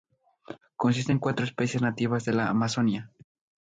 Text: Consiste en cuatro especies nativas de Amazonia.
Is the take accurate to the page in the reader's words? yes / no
no